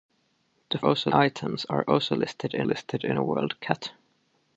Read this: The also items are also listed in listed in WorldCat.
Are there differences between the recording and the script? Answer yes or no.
no